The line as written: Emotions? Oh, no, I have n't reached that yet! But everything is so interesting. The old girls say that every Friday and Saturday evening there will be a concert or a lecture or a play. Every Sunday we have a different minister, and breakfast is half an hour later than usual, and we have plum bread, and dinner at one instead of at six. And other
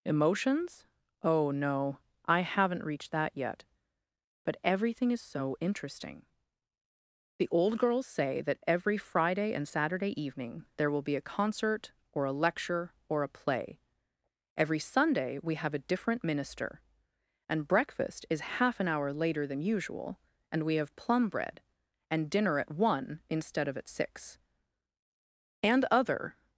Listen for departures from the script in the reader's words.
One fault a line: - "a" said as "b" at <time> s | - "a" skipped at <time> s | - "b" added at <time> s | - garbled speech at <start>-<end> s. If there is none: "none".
none